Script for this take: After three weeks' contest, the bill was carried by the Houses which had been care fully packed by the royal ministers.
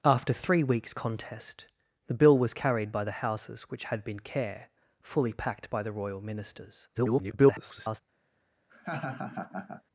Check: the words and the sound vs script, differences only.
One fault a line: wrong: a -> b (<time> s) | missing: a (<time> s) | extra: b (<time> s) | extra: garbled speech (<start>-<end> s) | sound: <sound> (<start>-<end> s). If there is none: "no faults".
extra: garbled speech (6.9-8.0 s)
sound: laugh (8.7-9.8 s)